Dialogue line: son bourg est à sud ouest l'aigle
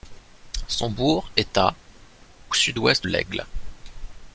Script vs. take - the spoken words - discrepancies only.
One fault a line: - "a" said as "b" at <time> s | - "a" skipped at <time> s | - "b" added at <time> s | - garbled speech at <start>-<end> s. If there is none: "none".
none